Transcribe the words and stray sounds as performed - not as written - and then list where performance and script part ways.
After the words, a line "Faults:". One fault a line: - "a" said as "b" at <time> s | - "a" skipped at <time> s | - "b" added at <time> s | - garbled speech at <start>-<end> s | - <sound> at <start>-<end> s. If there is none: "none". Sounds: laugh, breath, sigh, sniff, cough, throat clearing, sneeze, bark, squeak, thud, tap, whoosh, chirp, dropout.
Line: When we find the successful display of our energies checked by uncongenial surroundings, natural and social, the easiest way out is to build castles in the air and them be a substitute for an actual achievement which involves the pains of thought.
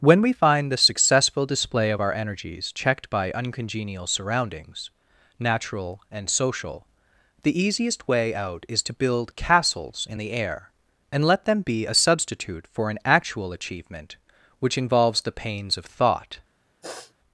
When we find the successful display of our energies checked by uncongenial surroundings, natural and social, the easiest way out is to build castles in the air and let them be a substitute for an actual achievement which involves the pains of thought.
Faults:
- "let" added at 11.2 s
- sniff at 16.8-17.1 s